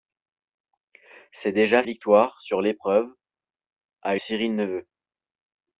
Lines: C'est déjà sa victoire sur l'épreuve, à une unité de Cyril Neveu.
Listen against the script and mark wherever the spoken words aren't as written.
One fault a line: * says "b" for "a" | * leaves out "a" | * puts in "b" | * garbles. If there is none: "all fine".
* leaves out "sa"
* leaves out "une unité de"